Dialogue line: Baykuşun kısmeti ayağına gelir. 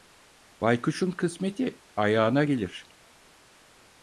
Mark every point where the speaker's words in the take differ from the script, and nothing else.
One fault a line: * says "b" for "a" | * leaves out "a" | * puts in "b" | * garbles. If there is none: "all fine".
all fine